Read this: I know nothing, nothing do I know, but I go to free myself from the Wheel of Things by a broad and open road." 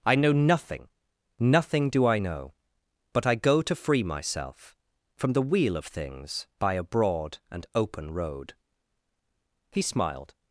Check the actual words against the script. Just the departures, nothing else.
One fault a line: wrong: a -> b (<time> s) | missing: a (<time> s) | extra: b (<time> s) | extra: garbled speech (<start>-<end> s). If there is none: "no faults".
extra: He smiled (9.7 s)